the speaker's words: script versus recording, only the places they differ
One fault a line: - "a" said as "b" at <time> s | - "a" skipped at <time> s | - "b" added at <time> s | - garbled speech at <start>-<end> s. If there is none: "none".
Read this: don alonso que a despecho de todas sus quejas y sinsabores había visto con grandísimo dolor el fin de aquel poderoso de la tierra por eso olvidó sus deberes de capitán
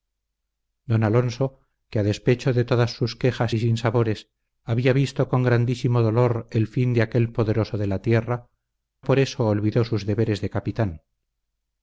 none